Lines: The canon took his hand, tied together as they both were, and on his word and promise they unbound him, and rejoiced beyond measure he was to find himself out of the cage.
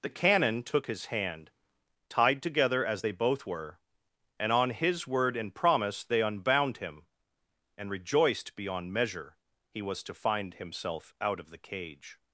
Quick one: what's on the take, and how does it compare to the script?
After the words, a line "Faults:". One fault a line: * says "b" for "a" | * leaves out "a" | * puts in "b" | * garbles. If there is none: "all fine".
The canon took his hand, tied together as they both were, and on his word and promise they unbound him, and rejoiced beyond measure he was to find himself out of the cage.
Faults:
all fine